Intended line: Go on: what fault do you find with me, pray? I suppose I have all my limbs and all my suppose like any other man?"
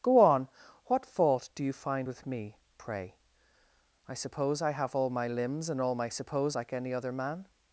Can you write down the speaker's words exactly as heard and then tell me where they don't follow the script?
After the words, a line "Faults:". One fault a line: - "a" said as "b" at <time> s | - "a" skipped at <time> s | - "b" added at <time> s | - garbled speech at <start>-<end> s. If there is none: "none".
Go on: what fault do you find with me, pray? I suppose I have all my limbs and all my suppose like any other man?"
Faults:
none